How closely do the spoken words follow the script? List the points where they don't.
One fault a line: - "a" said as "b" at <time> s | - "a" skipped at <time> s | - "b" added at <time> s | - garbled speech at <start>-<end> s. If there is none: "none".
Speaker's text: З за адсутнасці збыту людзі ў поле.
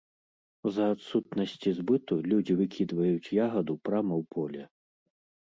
- "выкідваюць ягаду прама" added at 2.6 s